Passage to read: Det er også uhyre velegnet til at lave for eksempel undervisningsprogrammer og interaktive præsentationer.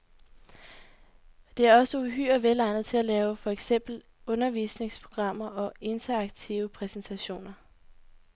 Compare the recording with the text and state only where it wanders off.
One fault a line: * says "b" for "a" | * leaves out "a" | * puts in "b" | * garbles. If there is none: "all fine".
all fine